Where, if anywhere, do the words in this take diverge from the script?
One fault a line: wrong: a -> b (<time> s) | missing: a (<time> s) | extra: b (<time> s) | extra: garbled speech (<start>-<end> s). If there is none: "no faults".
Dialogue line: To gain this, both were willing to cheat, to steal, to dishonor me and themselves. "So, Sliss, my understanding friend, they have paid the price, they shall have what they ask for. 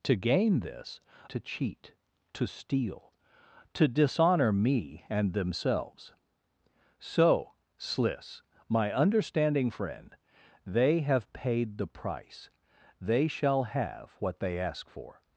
missing: both were willing (1.0 s)